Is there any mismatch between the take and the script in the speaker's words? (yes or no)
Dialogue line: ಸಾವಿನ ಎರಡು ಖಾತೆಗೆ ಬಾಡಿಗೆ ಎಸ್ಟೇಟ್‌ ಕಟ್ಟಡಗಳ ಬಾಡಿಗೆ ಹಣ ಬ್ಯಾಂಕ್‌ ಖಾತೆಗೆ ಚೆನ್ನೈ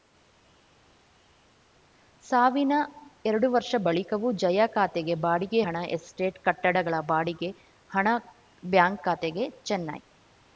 yes